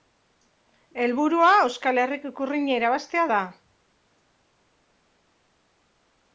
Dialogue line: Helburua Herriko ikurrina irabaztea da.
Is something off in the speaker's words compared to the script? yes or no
yes